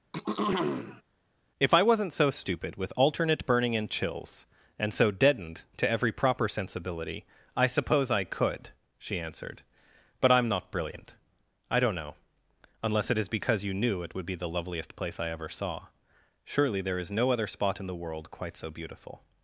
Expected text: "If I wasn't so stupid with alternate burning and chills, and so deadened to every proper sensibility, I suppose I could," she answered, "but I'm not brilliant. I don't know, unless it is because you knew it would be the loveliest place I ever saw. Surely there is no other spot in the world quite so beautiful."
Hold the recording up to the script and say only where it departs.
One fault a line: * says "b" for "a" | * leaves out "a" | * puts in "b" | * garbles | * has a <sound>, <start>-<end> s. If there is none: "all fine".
* has a throat clearing, 0.1-1.0 s